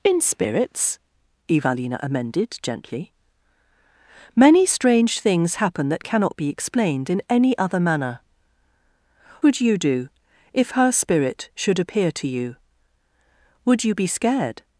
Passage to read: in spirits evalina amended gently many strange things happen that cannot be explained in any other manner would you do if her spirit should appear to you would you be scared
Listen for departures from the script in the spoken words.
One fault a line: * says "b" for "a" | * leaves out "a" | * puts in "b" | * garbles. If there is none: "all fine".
all fine